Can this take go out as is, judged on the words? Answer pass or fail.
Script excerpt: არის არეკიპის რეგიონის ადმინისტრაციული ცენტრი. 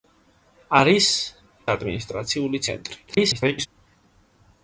fail